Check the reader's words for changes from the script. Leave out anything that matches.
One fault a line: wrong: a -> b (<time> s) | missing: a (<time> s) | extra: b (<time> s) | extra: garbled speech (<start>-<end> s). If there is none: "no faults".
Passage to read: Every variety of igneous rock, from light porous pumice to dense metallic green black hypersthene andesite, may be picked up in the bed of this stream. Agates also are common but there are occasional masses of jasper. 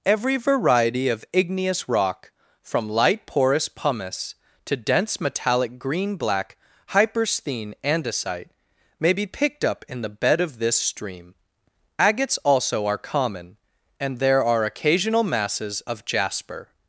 wrong: but -> and (14.0 s)